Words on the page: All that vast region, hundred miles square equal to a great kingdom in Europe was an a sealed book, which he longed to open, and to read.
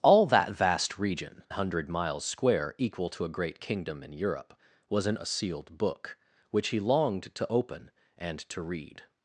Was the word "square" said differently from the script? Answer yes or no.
no